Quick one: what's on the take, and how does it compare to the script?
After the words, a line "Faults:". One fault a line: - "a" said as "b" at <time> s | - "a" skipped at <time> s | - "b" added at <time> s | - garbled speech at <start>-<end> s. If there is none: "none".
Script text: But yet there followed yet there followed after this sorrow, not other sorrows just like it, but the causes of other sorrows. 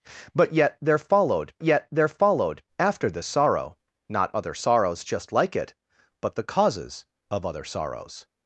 But yet there followed yet there followed after this sorrow, not other sorrows just like it, but the causes of other sorrows.
Faults:
none